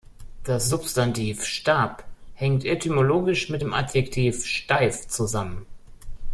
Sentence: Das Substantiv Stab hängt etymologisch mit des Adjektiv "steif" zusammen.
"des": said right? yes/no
no